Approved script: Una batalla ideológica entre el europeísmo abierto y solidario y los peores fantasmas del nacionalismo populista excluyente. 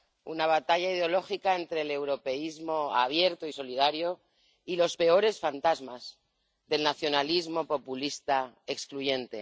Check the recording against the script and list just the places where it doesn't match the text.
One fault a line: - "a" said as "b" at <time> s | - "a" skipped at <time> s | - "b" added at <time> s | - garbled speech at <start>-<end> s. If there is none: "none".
none